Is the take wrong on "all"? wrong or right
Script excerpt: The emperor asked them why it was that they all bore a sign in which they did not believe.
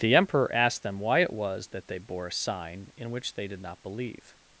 wrong